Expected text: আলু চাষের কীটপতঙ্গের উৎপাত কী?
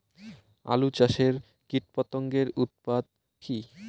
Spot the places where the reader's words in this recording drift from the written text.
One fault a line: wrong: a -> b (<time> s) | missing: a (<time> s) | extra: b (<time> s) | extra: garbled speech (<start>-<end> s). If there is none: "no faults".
no faults